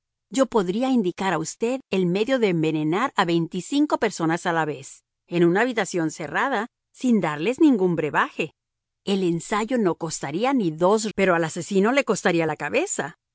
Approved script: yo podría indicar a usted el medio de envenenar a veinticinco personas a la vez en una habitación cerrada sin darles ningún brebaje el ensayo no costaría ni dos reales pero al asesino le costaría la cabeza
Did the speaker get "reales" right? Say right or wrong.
wrong